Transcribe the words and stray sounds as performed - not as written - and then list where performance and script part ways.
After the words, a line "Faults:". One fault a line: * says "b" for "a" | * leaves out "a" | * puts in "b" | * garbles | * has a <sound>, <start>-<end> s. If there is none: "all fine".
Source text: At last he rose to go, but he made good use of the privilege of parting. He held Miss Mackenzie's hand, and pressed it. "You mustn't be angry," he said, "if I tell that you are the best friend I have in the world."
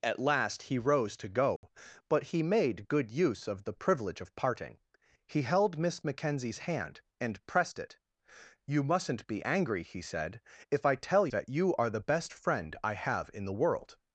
At last he rose to go, but he made good use of the privilege of parting. He held Miss Mackenzie's hand, and pressed it. "You mustn't be angry," he said, "if I tell that you are the best friend I have in the world."
Faults:
* has a dropout, 1.6-1.6 s